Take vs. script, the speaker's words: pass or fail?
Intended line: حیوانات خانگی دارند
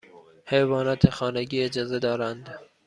fail